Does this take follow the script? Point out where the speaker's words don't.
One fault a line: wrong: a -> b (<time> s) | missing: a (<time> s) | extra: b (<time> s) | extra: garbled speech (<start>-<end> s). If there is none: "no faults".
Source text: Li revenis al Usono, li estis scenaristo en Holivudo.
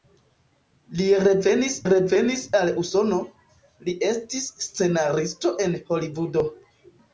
extra: revenis (1.9 s)